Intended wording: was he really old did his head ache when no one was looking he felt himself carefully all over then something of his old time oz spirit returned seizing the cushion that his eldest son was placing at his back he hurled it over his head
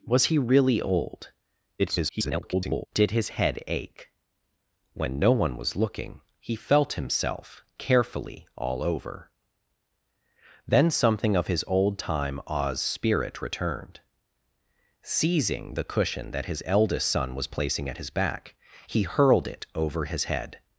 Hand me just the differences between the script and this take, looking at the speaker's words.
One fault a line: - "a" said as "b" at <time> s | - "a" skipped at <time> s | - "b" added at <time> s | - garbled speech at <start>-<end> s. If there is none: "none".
- garbled speech at 1.8-2.9 s